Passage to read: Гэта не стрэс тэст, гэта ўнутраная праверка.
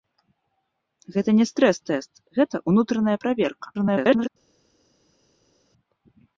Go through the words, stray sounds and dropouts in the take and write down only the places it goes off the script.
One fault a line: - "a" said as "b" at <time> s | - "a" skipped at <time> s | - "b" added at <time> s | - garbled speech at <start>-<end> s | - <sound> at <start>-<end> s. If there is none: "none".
- garbled speech at 3.7-4.3 s